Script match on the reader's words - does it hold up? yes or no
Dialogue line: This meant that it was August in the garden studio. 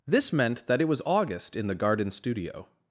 yes